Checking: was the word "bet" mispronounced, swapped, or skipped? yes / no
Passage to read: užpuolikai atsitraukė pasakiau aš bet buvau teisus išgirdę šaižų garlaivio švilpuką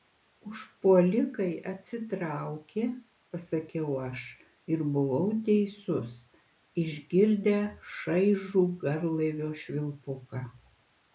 yes